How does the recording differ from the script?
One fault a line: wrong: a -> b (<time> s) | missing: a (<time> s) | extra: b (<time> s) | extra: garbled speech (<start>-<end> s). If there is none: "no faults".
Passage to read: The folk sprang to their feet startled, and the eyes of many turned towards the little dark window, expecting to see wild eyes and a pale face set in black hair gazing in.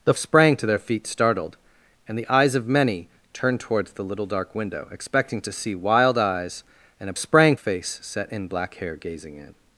missing: folk (0.1 s)
wrong: pale -> sprang (7.2 s)